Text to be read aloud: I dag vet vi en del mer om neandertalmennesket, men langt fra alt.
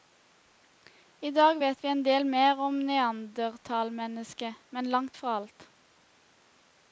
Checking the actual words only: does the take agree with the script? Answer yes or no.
yes